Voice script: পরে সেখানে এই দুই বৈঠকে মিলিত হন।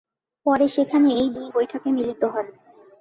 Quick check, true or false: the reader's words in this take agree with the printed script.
true